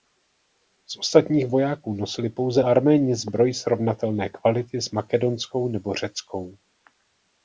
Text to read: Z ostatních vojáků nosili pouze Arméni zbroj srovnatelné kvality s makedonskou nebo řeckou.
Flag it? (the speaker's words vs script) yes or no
no